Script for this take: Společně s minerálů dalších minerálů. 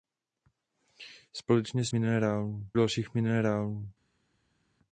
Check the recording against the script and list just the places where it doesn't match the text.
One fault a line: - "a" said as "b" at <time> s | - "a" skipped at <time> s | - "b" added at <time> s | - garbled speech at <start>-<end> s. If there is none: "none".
none